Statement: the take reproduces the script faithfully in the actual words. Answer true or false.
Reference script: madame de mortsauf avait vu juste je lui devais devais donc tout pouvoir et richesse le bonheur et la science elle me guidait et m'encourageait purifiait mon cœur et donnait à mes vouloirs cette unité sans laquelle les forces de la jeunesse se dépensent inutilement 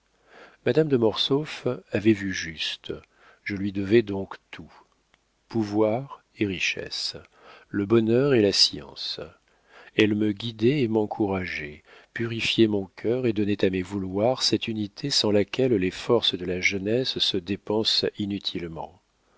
false